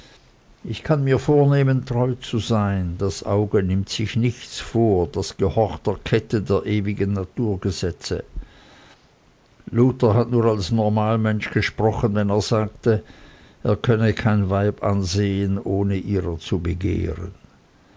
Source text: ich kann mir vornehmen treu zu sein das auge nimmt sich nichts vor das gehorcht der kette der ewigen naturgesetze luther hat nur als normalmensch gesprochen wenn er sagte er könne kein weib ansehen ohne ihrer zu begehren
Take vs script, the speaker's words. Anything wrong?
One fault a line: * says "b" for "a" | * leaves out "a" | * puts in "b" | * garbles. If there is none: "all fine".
all fine